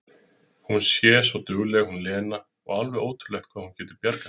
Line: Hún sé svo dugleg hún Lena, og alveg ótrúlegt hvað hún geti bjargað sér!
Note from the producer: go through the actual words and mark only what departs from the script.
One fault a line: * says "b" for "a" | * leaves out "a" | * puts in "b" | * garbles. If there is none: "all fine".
all fine